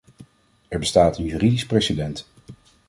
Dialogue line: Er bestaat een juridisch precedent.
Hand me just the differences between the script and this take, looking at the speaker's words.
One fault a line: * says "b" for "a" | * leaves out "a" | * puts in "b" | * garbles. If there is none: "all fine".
all fine